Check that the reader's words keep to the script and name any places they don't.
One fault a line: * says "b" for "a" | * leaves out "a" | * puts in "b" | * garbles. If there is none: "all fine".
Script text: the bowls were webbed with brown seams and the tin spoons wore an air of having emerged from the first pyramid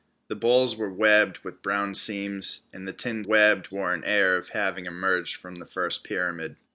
* says "webbed" for "spoons"